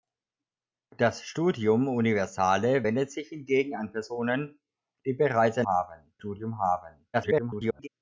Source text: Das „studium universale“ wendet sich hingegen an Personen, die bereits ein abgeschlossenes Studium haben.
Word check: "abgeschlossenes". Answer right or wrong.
wrong